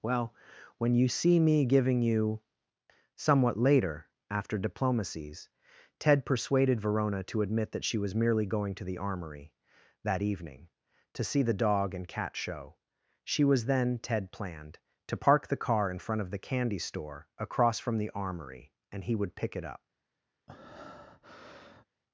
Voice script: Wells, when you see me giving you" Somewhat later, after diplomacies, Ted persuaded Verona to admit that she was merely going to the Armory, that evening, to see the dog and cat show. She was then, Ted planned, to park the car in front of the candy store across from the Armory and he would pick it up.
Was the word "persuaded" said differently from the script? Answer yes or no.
no